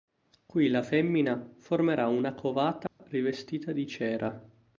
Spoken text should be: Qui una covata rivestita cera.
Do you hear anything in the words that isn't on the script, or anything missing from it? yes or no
yes